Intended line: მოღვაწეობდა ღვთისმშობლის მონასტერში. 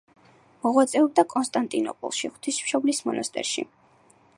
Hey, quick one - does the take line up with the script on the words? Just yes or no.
no